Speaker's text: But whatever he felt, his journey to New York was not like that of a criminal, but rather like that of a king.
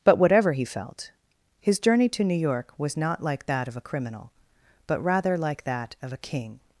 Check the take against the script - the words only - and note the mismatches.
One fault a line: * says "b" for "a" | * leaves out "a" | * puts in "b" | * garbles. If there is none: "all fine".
all fine